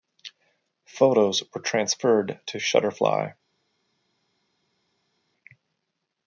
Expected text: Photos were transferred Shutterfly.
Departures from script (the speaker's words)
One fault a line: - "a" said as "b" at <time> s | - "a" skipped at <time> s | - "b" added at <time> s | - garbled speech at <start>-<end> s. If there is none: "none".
- "to" added at 2.5 s